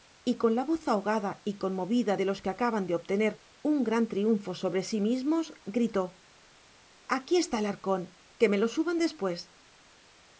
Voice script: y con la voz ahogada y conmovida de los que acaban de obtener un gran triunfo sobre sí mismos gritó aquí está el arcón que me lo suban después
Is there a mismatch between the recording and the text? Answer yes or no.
no